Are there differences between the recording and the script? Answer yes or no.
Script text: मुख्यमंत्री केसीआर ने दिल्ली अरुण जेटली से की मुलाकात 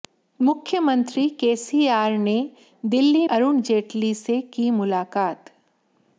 no